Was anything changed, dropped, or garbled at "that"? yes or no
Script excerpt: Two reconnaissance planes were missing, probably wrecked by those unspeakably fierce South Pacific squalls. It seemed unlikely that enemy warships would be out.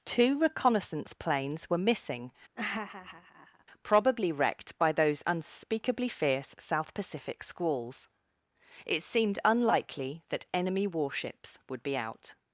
no